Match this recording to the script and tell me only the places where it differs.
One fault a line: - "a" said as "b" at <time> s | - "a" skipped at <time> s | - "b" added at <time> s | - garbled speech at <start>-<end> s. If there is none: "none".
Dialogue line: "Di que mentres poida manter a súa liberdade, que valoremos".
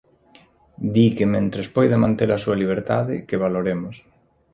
none